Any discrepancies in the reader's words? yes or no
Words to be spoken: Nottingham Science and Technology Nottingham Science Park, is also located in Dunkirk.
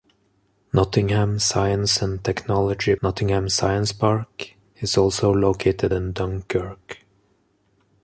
no